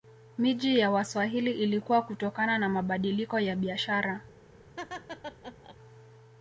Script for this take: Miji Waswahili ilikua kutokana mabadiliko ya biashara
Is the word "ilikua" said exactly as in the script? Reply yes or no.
yes